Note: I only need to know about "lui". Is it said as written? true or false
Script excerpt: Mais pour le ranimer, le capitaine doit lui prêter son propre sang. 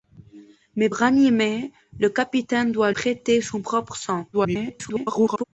false